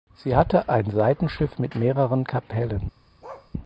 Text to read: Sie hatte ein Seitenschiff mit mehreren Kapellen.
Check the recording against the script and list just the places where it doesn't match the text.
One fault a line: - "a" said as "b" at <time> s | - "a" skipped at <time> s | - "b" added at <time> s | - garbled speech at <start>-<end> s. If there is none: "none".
none